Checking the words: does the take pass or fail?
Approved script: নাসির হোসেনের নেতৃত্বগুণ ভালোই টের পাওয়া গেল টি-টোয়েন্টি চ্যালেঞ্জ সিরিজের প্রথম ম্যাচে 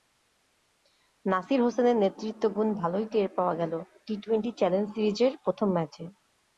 pass